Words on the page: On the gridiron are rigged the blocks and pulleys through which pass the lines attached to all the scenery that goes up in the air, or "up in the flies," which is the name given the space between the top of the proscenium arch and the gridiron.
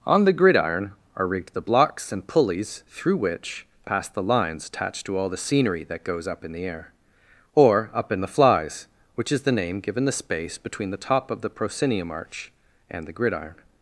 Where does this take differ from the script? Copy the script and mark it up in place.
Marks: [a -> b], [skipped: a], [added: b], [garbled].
On the gridiron are rigged the blocks and pulleys through which pass the lines attached to all the scenery that goes up in the air, or "up in the flies," which is the name given the space between the top of the proscenium arch and the gridiron.